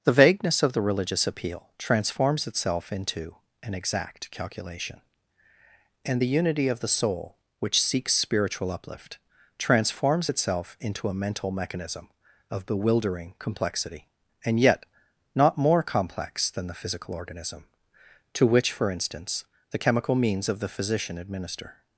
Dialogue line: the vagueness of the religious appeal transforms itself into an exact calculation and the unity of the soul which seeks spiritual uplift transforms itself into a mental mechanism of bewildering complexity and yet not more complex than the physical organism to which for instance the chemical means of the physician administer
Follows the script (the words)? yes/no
yes